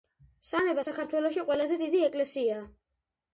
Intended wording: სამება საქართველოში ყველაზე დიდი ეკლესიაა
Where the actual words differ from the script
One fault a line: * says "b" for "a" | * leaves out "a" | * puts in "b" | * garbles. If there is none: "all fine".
all fine